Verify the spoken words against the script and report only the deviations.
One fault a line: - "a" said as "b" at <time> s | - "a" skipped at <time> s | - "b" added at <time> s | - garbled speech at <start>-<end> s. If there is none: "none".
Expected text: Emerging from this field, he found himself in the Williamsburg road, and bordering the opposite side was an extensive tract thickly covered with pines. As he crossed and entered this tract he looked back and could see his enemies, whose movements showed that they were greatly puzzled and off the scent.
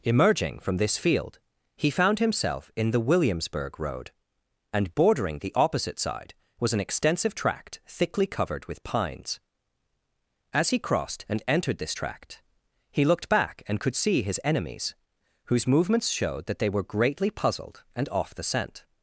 none